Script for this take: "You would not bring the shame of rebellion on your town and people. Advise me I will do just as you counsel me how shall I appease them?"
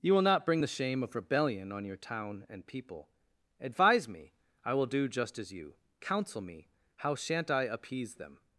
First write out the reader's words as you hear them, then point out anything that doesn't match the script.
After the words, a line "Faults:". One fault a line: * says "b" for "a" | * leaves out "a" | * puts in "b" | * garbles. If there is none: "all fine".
"You will not bring the shame of rebellion on your town and people. Advise me I will do just as you counsel me how shan't I appease them?"
Faults:
* says "will" for "would"
* says "shan't" for "shall"